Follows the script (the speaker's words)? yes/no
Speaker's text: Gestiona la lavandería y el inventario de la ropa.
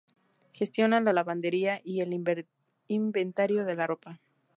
yes